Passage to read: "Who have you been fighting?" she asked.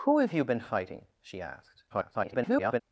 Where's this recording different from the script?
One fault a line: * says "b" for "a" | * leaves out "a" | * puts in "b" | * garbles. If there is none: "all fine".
* garbles